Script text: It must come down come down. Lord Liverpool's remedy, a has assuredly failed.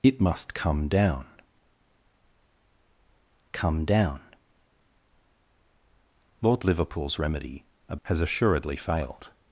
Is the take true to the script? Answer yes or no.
yes